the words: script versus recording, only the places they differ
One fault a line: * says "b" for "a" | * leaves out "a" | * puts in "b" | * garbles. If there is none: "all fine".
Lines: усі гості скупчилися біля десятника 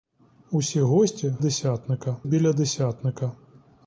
* says "десятника" for "скупчилися"